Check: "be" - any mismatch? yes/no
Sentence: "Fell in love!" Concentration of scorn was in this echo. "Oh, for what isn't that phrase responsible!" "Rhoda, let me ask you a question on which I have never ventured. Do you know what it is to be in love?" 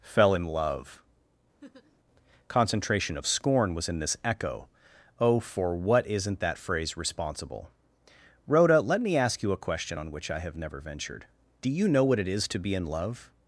no